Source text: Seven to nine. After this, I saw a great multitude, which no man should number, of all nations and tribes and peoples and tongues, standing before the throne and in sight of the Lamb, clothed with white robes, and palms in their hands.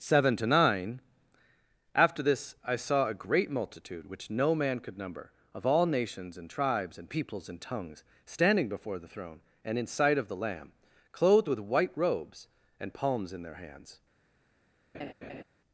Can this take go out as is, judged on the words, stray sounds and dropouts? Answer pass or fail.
fail